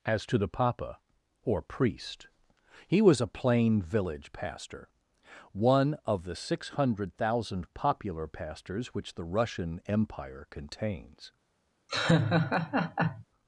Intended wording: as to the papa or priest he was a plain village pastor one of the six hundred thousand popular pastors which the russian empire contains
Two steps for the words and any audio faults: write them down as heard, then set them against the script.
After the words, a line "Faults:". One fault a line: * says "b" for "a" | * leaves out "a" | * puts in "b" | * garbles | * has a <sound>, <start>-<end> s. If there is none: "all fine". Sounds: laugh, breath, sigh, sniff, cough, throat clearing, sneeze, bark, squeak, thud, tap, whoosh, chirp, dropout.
as to the papa or priest he was a plain village pastor one of the six hundred thousand popular pastors which the russian empire contains
Faults:
* has a laugh, 11.9-13.2 s